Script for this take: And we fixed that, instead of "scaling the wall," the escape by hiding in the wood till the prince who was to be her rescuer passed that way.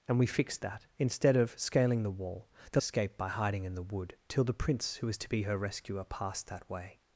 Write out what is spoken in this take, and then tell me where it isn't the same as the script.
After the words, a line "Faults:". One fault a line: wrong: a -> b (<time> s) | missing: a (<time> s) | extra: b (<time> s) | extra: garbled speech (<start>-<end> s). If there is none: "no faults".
And we fixed that, instead of "scaling the wall," the escape by hiding in the wood till the prince who was to be her rescuer passed that way.
Faults:
no faults